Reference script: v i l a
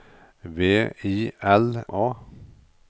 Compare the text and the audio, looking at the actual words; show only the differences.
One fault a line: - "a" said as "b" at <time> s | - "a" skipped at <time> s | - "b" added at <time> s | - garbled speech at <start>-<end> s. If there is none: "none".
none